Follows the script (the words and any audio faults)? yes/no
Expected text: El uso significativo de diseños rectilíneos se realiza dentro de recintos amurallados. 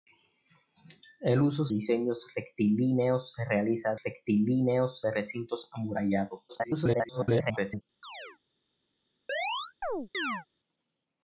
no